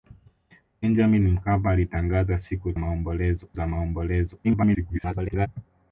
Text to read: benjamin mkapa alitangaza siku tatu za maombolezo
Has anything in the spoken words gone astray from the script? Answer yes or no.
yes